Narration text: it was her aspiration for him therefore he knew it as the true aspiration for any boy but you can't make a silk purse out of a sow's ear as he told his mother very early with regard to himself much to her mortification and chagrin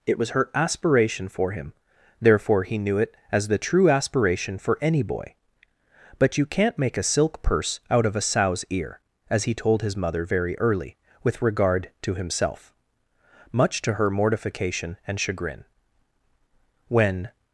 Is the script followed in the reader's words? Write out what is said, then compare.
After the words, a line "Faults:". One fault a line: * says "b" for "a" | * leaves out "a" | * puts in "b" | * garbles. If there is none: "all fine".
it was her aspiration for him therefore he knew it as the true aspiration for any boy but you can't make a silk purse out of a sow's ear as he told his mother very early with regard to himself much to her mortification and chagrin when
Faults:
* puts in "when"